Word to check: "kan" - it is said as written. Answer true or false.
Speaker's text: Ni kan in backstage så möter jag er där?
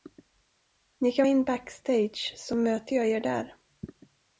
true